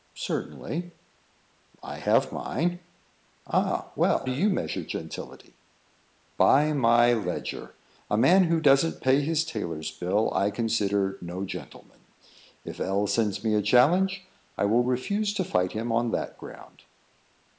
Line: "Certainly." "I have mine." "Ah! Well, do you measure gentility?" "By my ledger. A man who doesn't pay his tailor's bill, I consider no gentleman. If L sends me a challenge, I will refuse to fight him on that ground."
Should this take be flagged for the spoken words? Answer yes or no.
no